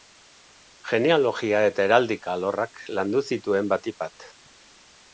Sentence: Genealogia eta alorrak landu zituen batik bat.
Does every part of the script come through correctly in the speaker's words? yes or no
no